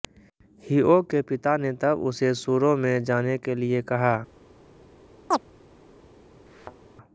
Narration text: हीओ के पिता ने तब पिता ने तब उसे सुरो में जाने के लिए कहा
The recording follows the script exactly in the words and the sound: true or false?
false